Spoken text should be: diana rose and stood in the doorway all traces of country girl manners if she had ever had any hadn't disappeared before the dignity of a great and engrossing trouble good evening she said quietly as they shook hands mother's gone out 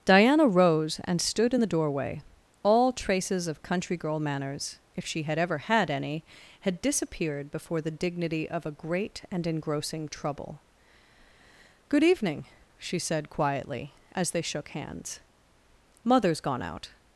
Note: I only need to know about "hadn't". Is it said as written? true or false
false